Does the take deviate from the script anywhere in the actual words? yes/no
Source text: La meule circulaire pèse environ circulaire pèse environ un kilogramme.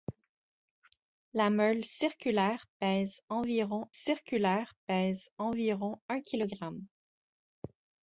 no